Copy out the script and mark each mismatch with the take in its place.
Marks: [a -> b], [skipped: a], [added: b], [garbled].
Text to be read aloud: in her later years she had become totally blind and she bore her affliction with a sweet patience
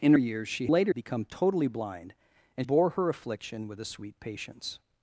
in [skipped: her later] years she [had -> later] become totally blind and [skipped: she] bore her affliction with a sweet patience